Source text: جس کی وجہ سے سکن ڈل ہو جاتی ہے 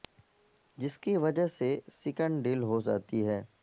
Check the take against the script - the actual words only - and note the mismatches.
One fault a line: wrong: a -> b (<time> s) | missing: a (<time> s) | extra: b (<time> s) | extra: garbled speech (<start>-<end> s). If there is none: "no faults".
no faults